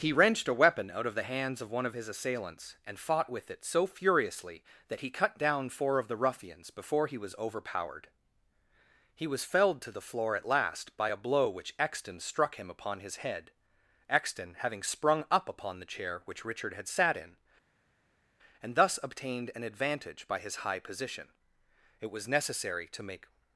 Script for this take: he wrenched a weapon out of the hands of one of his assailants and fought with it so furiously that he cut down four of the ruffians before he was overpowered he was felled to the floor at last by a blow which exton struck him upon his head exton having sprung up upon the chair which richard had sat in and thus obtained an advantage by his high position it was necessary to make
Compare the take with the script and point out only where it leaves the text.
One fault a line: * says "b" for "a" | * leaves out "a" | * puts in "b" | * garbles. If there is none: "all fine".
all fine